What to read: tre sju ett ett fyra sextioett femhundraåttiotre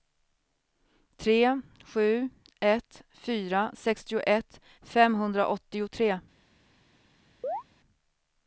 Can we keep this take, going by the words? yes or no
no